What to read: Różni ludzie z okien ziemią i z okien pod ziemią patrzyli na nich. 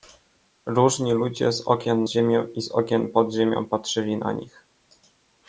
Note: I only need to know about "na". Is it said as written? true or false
true